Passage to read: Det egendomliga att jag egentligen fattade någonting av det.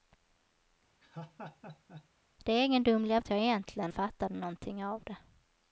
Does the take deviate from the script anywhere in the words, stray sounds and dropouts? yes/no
yes